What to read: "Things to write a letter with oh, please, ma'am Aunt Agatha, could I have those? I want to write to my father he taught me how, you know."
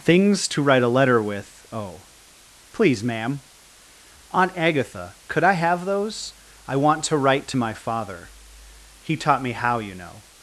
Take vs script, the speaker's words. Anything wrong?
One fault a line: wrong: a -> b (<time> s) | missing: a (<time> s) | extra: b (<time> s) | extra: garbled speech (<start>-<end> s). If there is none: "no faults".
no faults